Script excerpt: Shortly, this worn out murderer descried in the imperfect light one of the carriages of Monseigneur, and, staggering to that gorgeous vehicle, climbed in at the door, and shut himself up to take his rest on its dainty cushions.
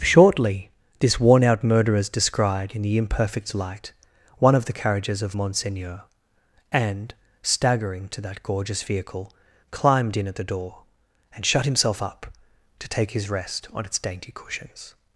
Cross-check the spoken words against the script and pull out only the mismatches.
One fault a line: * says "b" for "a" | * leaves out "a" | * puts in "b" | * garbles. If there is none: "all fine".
* says "murderers" for "murderer"